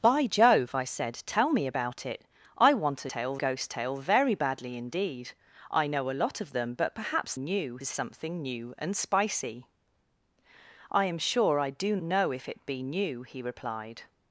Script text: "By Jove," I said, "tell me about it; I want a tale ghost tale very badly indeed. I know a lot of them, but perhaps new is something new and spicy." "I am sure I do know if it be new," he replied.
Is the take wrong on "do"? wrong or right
right